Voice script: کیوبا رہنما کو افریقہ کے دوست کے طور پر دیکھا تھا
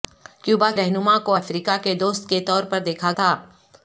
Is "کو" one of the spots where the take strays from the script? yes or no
no